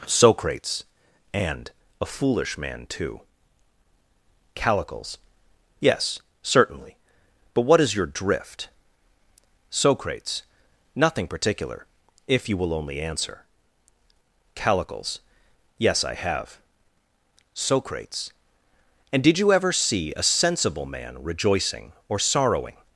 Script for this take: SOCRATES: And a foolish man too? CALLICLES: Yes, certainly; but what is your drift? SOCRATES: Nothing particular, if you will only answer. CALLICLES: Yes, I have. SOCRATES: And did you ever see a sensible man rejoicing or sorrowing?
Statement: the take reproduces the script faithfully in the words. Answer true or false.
true